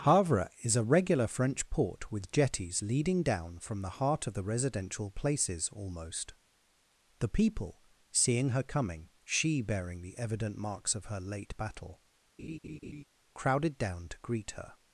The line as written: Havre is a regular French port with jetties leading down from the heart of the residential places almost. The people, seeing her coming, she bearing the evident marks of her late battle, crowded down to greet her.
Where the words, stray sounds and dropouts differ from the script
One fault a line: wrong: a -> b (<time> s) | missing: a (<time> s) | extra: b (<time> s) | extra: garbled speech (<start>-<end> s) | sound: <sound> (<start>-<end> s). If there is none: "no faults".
sound: laugh (12.4-13.0 s)